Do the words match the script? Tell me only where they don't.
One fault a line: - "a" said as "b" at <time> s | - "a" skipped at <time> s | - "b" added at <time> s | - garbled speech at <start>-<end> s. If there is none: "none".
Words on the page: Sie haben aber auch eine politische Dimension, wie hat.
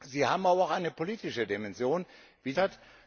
none